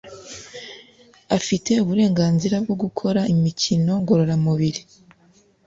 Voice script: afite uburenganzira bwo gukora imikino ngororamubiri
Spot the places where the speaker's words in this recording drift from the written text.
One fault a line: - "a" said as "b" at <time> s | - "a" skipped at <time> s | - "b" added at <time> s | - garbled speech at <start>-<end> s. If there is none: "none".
none